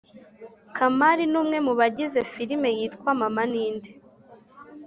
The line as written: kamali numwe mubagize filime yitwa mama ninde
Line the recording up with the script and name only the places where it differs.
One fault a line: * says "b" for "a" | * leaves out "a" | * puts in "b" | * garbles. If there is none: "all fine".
all fine